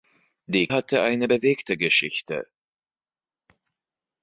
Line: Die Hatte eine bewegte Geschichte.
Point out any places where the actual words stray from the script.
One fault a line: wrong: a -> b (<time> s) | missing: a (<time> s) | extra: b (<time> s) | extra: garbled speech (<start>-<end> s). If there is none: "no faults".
no faults